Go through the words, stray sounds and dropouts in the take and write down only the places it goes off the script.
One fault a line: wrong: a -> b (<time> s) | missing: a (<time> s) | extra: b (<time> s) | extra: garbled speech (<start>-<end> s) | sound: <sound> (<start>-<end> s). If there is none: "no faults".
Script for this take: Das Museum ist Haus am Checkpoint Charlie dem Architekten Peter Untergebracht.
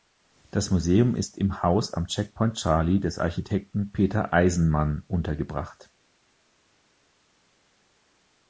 extra: im (1.4 s)
wrong: dem -> des (3.0 s)
extra: Eisenman (4.3 s)